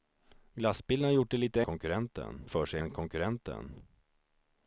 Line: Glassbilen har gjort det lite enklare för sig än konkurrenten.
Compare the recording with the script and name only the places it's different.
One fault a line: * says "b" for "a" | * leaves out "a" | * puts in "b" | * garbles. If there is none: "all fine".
* says "konkurrenten" for "enklare"